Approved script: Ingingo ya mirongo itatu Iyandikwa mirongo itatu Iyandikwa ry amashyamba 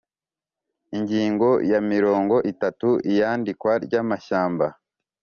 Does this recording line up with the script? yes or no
no